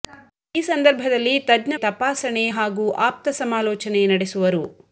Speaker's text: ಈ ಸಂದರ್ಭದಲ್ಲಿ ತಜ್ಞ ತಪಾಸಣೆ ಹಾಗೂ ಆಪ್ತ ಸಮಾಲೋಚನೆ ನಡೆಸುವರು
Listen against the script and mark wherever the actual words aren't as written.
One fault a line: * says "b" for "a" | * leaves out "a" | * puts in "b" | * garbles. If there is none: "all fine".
all fine